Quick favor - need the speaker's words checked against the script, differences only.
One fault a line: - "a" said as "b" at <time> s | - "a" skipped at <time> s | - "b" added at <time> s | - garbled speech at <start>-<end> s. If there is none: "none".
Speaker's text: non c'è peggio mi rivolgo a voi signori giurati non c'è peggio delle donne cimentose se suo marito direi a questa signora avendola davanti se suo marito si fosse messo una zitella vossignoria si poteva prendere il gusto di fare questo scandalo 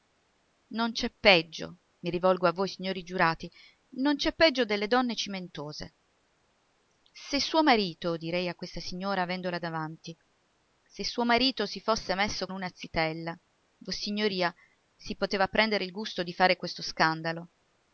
none